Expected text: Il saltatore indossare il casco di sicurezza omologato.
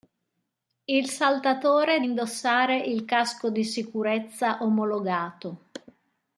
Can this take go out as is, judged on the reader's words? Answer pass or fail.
pass